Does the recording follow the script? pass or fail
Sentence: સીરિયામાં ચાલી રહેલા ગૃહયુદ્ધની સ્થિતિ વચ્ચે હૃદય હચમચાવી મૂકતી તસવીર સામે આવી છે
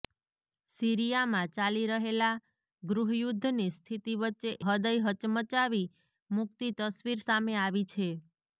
pass